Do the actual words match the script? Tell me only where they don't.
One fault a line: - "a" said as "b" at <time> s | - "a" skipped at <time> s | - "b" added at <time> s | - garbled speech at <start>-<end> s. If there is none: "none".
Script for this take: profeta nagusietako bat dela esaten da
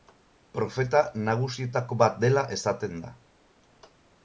none